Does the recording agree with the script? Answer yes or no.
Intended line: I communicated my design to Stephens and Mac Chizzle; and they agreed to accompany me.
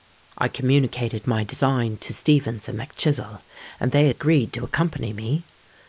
yes